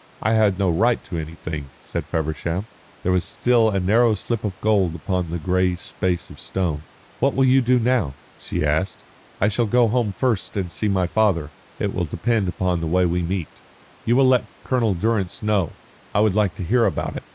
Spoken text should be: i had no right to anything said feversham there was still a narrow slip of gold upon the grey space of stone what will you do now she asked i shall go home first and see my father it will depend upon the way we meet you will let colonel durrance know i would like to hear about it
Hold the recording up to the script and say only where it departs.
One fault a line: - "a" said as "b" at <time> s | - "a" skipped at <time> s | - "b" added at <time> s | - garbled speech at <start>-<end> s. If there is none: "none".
none